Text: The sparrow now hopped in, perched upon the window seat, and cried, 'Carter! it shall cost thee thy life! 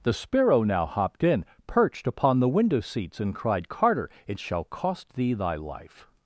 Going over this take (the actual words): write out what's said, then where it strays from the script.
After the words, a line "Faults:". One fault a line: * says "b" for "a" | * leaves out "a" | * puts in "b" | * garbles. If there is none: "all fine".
The sparrow now hopped in, perched upon the window seats, and cried, 'Carter! it shall cost thee thy life!
Faults:
* says "seats" for "seat"